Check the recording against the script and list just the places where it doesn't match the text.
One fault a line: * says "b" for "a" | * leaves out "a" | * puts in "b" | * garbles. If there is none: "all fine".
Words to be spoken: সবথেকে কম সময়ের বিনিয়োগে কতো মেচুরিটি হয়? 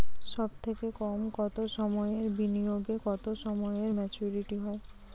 * puts in "কতো"
* puts in "সময়ে"